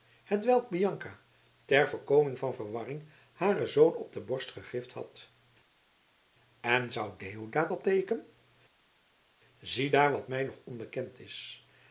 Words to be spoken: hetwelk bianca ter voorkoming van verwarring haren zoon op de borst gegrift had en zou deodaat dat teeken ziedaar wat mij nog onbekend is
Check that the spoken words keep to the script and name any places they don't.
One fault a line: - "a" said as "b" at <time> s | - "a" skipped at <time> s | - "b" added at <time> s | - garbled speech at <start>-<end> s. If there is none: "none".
none